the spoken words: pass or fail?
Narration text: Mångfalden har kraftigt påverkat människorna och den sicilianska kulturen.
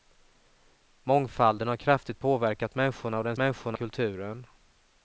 fail